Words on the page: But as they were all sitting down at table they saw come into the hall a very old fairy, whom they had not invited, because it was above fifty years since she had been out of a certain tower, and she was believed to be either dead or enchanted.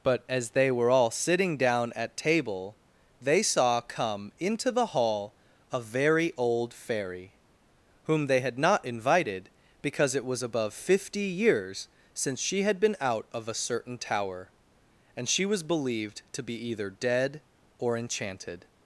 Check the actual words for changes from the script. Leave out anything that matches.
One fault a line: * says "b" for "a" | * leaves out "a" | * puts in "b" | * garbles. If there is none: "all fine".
all fine